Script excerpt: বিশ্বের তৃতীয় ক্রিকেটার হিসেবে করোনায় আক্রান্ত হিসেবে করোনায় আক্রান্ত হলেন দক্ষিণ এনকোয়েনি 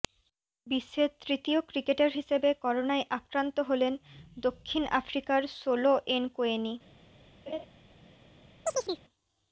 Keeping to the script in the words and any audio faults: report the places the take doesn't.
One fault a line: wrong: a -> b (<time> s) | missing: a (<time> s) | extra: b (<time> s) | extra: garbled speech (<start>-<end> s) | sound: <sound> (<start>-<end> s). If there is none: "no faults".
wrong: হিসেবে করোনায় আক্রান্ত হলেন দক্ষিণ -> হলেন দক্ষিণ আফ্রিকার সোলো (3.7 s)
sound: laugh (7.5-7.7 s)
sound: chirp (8.7-9.0 s)